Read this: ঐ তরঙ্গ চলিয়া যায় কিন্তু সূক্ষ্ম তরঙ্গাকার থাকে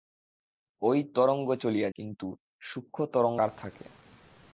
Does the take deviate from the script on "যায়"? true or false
true